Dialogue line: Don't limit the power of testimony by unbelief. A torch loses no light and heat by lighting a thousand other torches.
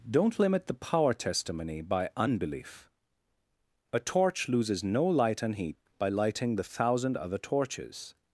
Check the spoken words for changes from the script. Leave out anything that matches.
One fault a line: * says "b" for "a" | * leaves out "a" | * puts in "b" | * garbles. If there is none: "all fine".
* leaves out "of"
* says "the" for "a"